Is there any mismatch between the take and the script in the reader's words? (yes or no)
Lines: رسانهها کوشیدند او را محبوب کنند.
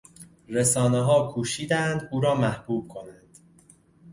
no